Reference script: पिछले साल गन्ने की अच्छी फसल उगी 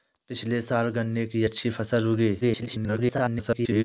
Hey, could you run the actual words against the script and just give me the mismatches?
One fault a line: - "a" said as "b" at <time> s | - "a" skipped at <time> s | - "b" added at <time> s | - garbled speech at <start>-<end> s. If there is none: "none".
- garbled speech at 2.4-3.8 s